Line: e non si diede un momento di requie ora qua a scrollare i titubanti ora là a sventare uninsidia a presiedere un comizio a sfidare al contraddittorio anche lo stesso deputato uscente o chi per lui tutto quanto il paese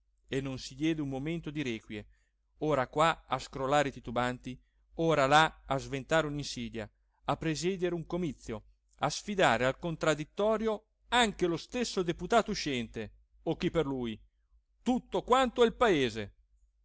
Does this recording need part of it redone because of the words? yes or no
no